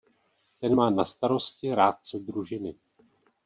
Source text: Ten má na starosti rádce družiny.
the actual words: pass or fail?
pass